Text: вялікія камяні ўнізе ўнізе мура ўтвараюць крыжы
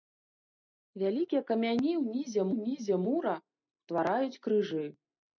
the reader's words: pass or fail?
pass